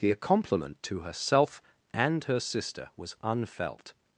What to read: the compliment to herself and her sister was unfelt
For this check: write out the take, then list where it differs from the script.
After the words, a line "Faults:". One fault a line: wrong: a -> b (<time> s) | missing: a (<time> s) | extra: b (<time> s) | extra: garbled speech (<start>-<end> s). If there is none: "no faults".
the compliment to herself and her sister was unfelt
Faults:
no faults